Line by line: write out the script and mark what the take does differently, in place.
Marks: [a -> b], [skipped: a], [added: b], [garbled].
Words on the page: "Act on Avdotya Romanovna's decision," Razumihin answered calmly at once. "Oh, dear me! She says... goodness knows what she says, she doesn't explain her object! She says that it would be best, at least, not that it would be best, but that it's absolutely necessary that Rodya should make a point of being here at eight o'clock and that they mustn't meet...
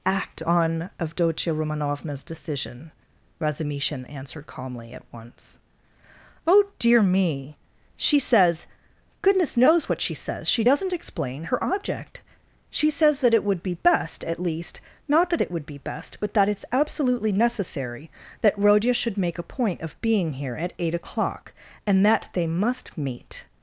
"Act on Avdotya Romanovna's decision," Razumihin answered calmly at once. "Oh, dear me! She says... goodness knows what she says, she doesn't explain her object! She says that it would be best, at least, not that it would be best, but that it's absolutely necessary that Rodya should make a point of being here at eight o'clock and that they [mustn't -> must] meet...